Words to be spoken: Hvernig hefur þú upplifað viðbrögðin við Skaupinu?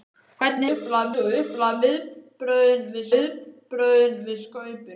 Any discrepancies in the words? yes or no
yes